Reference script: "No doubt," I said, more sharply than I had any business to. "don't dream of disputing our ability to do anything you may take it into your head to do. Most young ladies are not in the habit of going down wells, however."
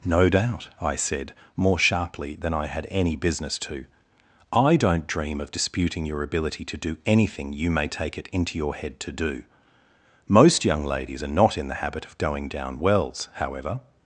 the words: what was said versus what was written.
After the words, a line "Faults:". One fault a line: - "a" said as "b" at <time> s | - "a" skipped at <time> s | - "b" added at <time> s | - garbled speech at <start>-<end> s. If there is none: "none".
"No doubt," I said, more sharply than I had any business to. "I don't dream of disputing your ability to do anything you may take it into your head to do. Most young ladies are not in the habit of going down wells, however."
Faults:
- "I" added at 4.5 s
- "our" said as "your" at 6.0 s